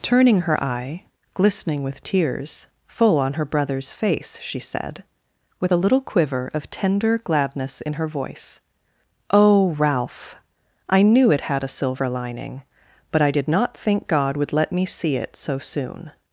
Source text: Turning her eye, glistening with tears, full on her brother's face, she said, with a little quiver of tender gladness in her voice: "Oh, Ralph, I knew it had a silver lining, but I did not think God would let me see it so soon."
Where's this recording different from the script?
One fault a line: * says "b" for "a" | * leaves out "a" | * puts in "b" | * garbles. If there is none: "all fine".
all fine